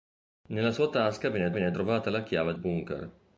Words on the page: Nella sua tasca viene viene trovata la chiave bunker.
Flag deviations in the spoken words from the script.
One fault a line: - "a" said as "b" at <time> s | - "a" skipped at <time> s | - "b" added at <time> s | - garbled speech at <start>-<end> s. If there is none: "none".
none